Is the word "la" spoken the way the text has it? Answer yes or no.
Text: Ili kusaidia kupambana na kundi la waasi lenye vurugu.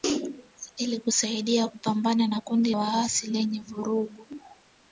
no